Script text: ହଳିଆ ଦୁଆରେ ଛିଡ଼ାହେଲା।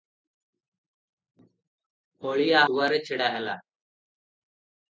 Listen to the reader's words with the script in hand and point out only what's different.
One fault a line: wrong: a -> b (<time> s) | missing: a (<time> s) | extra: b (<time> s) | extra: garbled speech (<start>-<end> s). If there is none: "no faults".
no faults